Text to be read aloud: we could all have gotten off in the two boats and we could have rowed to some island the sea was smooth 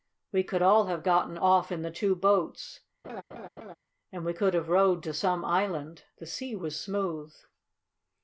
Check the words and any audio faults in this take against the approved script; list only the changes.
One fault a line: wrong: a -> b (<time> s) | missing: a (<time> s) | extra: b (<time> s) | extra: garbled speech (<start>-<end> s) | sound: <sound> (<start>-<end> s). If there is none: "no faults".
sound: laugh (3.0-3.8 s)